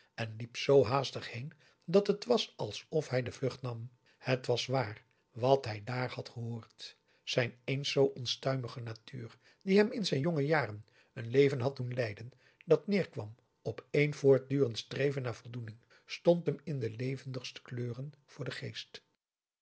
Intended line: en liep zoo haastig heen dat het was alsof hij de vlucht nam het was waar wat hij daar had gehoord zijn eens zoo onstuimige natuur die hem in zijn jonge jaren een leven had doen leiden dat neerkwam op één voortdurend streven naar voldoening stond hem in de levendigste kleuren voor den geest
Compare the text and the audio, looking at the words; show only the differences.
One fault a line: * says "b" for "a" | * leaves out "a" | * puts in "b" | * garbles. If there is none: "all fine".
all fine